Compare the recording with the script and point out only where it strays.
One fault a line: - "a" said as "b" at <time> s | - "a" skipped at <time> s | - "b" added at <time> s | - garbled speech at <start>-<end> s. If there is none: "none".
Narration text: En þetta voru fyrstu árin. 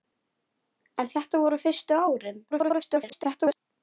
- garbled speech at 2.5-3.6 s